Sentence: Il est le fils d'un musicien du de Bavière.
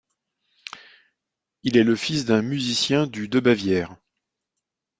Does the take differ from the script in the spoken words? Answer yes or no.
no